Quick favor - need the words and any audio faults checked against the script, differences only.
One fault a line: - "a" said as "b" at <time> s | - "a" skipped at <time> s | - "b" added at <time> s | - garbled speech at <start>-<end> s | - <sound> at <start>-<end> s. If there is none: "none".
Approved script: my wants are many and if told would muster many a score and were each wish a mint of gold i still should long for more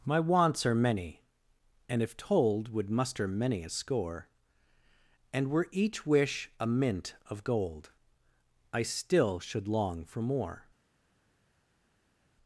none